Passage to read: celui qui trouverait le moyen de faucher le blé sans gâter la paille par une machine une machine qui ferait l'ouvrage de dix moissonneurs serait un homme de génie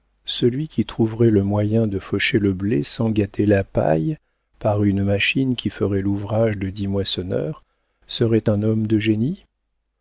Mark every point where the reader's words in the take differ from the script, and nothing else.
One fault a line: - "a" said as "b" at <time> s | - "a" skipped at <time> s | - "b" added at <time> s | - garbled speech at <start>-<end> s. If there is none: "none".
- "une machine" skipped at 5.5 s